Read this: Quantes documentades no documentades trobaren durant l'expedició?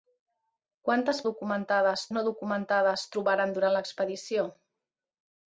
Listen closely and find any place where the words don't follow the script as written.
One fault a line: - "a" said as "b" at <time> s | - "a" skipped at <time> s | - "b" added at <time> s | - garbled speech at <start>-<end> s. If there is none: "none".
none